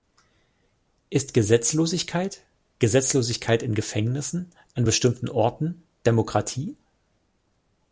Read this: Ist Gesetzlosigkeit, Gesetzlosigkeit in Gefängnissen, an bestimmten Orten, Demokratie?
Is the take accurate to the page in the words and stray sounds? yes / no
yes